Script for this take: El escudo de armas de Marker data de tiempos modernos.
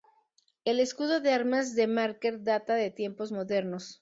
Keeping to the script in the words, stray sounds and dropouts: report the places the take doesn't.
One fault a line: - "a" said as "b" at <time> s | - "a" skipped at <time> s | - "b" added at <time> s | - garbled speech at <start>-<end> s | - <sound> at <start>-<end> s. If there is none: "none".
none